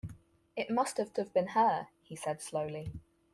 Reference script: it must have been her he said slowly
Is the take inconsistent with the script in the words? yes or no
yes